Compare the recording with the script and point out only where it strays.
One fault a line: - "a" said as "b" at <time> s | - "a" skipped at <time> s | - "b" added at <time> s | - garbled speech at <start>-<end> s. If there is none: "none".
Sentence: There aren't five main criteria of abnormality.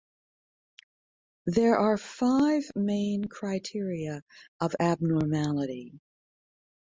- "aren't" said as "are" at 1.8 s